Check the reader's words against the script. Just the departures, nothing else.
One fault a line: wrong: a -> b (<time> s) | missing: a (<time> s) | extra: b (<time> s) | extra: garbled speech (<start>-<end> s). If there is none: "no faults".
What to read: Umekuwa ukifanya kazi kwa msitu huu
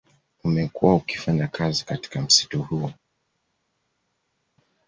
wrong: kwa -> katika (1.9 s)